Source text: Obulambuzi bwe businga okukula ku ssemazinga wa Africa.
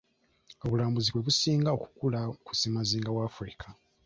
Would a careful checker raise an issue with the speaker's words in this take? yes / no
no